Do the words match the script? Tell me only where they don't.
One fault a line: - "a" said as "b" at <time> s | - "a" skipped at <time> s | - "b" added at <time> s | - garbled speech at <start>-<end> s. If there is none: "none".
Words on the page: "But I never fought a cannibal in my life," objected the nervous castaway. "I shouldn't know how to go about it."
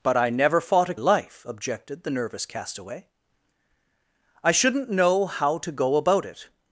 - "cannibal in my" skipped at 0.9 s